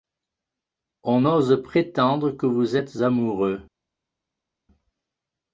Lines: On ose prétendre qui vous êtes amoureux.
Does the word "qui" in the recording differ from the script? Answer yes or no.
yes